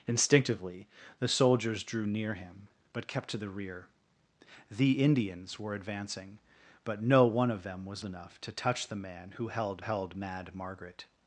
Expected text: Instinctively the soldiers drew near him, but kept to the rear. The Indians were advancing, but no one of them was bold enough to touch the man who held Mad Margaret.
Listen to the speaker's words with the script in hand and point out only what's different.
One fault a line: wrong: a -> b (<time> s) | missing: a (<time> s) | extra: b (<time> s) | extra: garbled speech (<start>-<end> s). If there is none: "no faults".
missing: bold (8.0 s)
extra: held (9.8 s)